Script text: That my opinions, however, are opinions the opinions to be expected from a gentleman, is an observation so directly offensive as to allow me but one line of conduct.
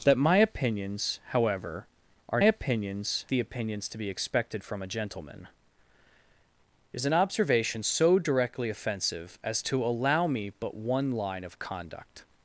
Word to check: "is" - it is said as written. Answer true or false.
true